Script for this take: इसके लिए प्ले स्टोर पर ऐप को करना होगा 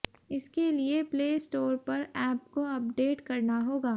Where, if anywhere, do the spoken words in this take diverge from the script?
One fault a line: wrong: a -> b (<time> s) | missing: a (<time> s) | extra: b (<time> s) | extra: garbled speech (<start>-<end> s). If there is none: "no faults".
extra: अपडेट (2.8 s)